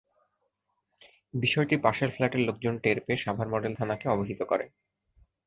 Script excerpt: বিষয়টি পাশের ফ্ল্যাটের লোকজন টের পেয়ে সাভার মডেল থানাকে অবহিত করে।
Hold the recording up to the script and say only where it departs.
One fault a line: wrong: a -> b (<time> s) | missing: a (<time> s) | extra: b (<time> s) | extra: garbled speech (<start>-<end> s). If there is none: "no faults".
no faults